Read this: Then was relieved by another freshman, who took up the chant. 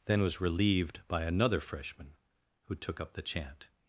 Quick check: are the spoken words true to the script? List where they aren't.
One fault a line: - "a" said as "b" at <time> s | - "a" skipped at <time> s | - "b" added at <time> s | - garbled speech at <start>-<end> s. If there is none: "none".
none